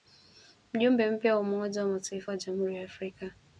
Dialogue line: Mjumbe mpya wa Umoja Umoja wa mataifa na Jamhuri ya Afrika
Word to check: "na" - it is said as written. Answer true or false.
false